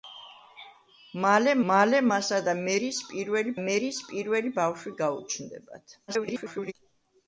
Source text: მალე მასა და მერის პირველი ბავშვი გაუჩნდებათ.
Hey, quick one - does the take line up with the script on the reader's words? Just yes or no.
no